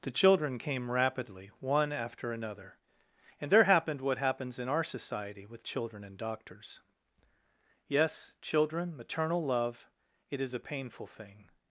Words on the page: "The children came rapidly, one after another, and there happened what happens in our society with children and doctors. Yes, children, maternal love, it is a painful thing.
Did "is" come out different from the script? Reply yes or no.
no